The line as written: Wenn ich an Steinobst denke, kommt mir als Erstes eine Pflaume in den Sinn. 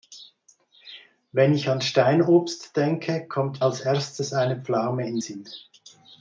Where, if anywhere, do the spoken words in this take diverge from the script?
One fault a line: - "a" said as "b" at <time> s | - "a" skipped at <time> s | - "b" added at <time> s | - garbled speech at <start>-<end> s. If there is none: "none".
- "mir" skipped at 3.6 s
- "den" skipped at 5.2 s